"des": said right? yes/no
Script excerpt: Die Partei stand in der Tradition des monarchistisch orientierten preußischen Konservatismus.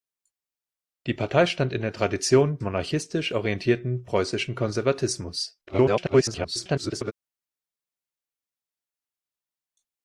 no